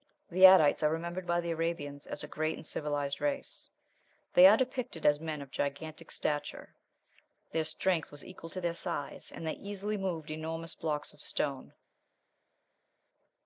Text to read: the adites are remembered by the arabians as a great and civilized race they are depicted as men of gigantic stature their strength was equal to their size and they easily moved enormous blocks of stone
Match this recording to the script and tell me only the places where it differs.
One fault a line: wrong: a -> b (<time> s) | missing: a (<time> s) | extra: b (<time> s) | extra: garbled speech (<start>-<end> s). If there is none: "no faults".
no faults